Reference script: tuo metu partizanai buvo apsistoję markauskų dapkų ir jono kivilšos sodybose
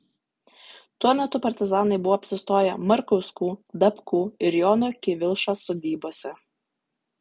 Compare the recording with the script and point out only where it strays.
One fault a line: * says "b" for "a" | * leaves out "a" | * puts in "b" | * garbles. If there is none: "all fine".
all fine